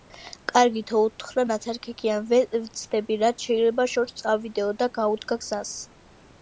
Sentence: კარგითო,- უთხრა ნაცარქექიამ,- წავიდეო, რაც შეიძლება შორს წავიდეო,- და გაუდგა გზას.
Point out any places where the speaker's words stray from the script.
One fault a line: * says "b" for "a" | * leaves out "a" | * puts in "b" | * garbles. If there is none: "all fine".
* says "ვეცდები" for "წავიდეო"